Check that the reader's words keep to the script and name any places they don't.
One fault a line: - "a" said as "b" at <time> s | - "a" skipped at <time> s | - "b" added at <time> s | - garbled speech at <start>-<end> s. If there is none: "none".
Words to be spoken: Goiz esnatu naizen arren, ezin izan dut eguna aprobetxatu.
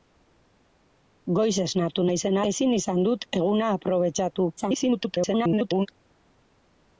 - "arren" skipped at 2.4 s
- garbled speech at 4.6-5.9 s